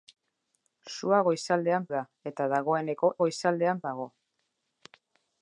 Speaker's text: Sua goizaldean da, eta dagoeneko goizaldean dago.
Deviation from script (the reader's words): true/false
false